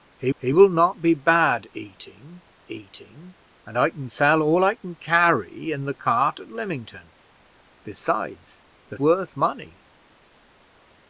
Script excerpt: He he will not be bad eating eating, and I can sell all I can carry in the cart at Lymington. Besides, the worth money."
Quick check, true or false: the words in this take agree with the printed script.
true